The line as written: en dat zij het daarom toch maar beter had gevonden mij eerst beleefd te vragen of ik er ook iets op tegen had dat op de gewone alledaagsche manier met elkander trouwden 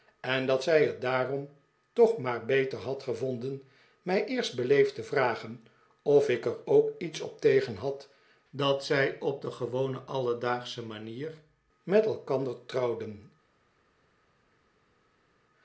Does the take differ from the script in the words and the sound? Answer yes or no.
yes